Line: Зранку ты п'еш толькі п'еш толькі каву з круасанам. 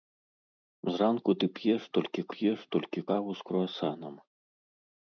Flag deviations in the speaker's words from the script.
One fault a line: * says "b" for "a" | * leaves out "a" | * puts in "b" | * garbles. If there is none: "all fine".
all fine